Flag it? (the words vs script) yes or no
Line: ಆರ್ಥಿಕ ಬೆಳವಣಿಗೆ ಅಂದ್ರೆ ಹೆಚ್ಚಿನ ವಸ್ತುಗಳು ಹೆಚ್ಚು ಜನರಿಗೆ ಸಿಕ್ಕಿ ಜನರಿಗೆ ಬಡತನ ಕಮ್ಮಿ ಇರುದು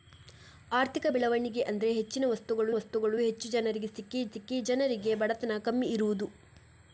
yes